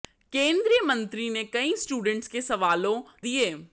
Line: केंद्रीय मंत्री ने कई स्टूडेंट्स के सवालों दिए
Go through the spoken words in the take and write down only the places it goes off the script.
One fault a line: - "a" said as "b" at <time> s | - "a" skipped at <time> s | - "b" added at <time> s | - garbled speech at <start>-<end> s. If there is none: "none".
none